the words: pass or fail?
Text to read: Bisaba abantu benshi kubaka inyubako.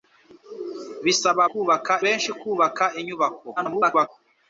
fail